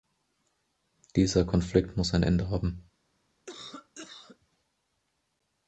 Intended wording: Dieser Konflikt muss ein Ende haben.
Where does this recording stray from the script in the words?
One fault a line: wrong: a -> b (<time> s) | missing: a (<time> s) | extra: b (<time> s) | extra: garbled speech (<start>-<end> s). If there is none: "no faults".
no faults